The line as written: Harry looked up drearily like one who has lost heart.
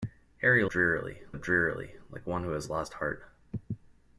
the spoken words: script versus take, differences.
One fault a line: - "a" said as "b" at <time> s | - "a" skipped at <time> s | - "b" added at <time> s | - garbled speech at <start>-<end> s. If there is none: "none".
- "looked" said as "drearily" at 0.7 s